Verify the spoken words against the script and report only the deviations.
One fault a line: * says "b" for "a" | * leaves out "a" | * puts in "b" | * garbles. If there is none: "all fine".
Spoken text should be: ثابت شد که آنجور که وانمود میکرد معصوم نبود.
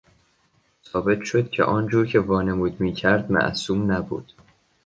all fine